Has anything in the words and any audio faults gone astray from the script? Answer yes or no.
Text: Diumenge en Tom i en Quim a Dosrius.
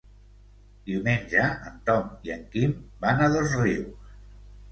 yes